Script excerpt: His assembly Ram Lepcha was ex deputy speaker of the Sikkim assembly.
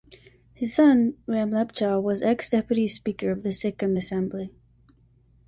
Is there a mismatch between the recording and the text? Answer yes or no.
yes